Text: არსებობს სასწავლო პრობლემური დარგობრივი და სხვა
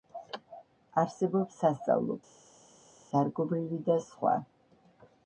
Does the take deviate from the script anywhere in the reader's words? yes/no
yes